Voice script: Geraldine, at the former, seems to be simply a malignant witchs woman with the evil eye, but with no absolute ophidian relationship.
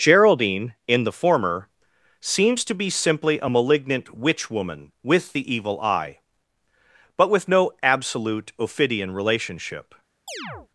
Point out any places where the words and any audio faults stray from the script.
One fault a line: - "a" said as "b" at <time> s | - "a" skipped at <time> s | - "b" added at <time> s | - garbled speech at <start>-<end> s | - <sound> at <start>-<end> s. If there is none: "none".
- "at" said as "in" at 0.9 s
- "witchs" said as "witch" at 4.2 s
- chirp at 10.3-10.7 s